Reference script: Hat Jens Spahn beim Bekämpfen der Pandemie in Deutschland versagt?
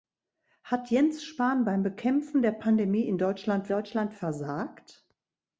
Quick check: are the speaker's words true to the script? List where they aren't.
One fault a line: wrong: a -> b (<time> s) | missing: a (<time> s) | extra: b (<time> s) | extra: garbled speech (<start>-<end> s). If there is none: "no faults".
extra: Deutschland (3.7 s)